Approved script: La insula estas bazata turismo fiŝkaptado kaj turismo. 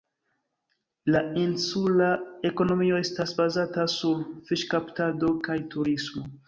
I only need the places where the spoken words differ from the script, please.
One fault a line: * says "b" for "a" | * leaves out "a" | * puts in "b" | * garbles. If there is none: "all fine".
* puts in "ekonomio"
* says "sur" for "turismo"